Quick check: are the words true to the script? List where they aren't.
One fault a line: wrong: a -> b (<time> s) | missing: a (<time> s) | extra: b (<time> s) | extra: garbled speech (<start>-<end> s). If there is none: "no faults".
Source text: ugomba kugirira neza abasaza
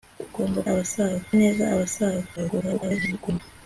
wrong: kugirira -> abasaza (0.7 s)
extra: garbled speech (2.4-3.4 s)